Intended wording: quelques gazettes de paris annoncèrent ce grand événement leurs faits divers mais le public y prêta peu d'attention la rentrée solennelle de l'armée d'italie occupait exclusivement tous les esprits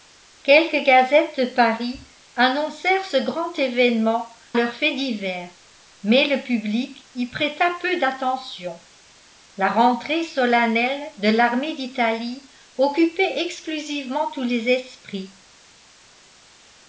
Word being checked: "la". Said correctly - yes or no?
yes